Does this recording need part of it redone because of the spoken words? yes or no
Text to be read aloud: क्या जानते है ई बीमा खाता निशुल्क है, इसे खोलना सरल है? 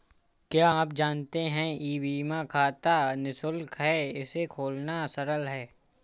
yes